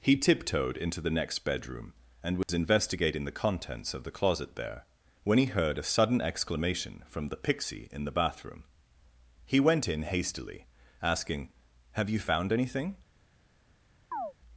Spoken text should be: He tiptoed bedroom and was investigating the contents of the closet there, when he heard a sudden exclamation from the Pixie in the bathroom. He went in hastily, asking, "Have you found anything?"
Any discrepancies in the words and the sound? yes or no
yes